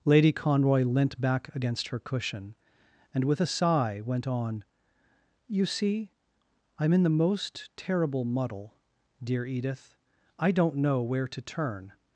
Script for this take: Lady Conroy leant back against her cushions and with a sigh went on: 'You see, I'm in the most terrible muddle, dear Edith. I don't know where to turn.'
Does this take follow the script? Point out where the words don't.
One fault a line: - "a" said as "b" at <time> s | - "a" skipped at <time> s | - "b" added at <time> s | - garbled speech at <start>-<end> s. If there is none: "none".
- "cushions" said as "cushion" at 2.0 s